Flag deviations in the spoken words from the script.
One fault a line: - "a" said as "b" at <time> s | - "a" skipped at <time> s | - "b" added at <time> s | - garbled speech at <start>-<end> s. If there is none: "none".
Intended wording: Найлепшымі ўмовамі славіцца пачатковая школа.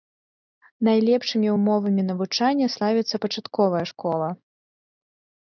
- "навучання" added at 2.1 s